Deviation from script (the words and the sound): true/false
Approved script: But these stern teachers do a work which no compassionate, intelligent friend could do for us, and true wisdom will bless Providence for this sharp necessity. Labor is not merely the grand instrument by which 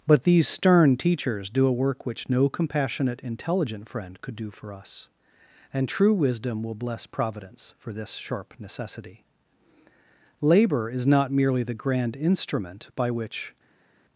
false